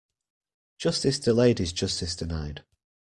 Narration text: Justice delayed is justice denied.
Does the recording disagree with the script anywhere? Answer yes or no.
no